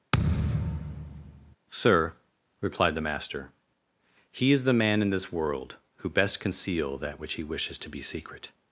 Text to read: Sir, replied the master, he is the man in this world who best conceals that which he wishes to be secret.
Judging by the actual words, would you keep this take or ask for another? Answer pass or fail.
fail